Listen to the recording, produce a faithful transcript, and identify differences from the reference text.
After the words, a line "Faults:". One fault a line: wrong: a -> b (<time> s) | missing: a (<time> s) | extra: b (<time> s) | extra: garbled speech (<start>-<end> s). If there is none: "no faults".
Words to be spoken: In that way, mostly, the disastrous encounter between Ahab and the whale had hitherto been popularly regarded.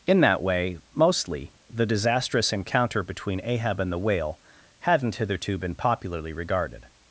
In that way, mostly, the disastrous encounter between Ahab and the whale hadn't hitherto been popularly regarded.
Faults:
wrong: had -> hadn't (4.8 s)